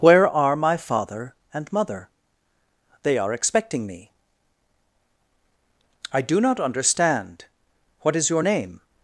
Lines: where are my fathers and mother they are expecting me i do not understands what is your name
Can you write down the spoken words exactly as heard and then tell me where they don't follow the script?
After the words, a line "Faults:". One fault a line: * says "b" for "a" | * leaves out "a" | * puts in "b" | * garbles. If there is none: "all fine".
where are my father and mother they are expecting me i do not understand what is your name
Faults:
* says "father" for "fathers"
* says "understand" for "understands"